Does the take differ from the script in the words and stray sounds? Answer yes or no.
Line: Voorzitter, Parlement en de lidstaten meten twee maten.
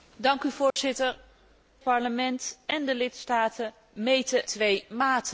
yes